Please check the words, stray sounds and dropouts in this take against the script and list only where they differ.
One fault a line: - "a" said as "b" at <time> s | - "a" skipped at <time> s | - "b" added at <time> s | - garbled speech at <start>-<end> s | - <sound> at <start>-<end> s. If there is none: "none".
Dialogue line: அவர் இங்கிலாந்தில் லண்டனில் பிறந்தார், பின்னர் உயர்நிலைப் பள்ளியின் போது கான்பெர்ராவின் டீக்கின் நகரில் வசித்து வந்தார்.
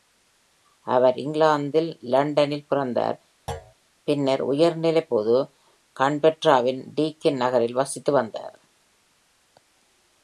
- thud at 3.5-3.7 s
- "பள்ளியின்" skipped at 5.1 s